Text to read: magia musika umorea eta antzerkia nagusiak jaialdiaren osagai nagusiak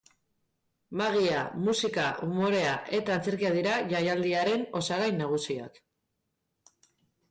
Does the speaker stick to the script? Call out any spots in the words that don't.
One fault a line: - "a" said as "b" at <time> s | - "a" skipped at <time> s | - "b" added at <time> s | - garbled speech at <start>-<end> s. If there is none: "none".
- "nagusiak" said as "dira" at 3.6 s